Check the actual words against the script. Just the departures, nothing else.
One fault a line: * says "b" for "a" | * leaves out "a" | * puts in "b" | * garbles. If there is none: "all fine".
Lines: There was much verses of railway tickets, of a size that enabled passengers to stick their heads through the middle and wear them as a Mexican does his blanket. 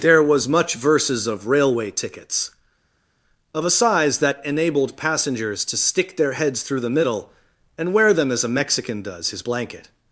all fine